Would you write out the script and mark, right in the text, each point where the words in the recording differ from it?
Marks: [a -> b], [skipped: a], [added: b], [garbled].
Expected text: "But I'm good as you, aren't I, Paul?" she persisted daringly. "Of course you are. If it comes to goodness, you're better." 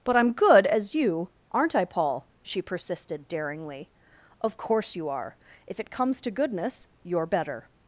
"But I'm good as you, aren't I, Paul?" she persisted daringly. "Of course you are. If it comes to goodness, you're better."